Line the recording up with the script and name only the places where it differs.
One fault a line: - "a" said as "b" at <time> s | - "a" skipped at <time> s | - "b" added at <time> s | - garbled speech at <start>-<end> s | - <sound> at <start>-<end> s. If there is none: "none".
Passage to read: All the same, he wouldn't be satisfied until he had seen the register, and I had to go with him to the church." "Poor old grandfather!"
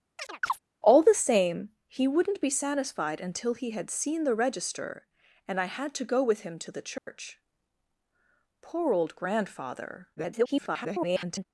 - chirp at 0.2-0.6 s
- dropout at 7.0-7.1 s
- garbled speech at 10.2-11.5 s